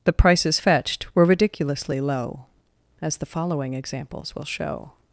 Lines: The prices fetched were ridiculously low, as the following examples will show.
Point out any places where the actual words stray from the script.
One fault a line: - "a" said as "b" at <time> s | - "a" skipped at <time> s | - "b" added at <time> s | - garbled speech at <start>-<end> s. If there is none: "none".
none